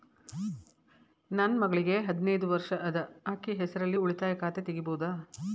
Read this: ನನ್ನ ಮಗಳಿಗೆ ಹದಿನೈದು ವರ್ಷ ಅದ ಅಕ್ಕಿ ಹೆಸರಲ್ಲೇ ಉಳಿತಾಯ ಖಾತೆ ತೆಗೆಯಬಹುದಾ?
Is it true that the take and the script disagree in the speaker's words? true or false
false